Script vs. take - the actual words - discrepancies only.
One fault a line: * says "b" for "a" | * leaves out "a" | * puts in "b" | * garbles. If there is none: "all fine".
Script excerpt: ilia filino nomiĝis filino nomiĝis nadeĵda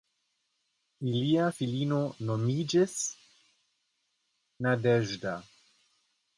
* leaves out "filino nomiĝis"